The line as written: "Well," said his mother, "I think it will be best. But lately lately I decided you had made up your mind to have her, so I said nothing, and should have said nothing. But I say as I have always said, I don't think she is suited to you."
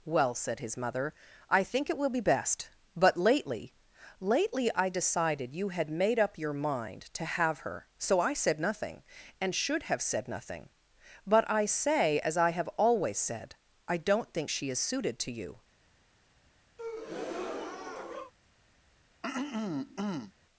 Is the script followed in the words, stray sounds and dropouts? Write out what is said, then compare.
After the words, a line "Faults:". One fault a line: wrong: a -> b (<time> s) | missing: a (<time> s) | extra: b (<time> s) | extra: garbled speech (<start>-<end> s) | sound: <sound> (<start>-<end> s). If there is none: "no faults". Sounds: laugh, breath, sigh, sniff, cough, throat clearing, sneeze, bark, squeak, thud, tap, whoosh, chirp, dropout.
"Well," said his mother, "I think it will be best. But lately lately I decided you had made up your mind to have her, so I said nothing, and should have said nothing. But I say as I have always said, I don't think she is suited to you."
Faults:
sound: breath (16.8-18.3 s)
sound: throat clearing (19.2-20.3 s)